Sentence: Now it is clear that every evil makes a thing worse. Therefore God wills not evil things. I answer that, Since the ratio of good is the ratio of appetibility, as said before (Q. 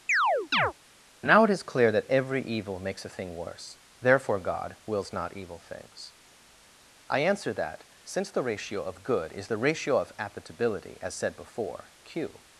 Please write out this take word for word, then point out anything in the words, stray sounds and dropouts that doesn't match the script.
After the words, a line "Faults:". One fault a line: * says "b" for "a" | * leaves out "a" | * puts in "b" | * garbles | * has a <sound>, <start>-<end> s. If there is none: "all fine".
Now it is clear that every evil makes a thing worse. Therefore God wills not evil things. I answer that, Since the ratio of good is the ratio of appetibility, as said before (Q.
Faults:
* has a chirp, 0.1-0.7 s